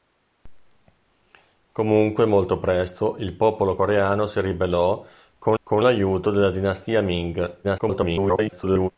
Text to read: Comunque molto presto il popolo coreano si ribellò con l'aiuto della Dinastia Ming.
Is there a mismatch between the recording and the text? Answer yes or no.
yes